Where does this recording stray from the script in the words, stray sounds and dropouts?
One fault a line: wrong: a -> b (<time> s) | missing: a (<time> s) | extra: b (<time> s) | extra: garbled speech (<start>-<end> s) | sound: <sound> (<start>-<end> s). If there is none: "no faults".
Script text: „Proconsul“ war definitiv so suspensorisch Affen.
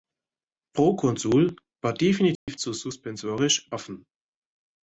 sound: dropout (2.4-2.5 s)